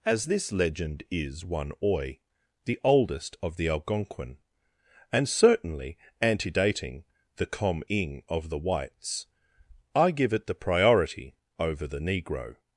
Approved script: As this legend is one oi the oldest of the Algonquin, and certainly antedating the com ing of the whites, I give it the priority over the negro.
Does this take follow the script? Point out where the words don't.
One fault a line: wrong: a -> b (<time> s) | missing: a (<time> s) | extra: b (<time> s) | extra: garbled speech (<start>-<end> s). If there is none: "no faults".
no faults